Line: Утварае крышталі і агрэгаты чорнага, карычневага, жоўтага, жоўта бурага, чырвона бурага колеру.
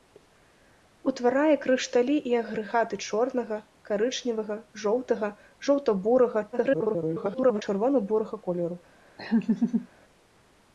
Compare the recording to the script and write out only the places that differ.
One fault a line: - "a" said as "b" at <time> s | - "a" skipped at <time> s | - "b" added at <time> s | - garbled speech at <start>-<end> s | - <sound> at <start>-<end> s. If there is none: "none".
- garbled speech at 6.5-7.6 s
- laugh at 9.2-9.9 s